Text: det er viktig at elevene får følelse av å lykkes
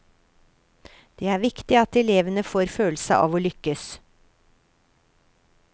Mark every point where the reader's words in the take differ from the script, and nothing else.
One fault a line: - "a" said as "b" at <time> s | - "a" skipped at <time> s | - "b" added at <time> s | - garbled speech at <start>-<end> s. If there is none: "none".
none